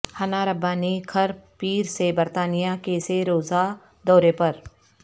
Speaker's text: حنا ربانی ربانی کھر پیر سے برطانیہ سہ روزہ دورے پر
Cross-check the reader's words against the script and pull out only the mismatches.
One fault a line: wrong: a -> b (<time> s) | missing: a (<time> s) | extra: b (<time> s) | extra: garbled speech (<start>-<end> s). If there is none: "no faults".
missing: ربانی (1.0 s)
extra: کے (2.8 s)